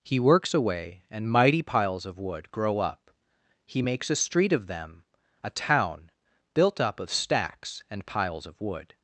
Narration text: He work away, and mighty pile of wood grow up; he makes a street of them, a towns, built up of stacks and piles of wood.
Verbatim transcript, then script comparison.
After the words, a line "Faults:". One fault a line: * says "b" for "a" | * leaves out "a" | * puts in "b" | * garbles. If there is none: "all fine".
He works away, and mighty piles of wood grow up; he makes a street of them, a town, built up of stacks and piles of wood.
Faults:
* says "works" for "work"
* says "piles" for "pile"
* says "town" for "towns"